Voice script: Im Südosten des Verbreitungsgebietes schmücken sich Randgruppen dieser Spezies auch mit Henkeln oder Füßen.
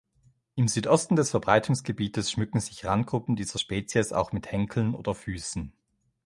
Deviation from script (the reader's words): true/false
false